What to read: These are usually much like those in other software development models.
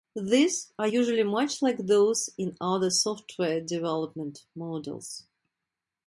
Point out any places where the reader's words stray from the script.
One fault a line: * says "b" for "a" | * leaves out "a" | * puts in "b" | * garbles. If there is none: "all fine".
all fine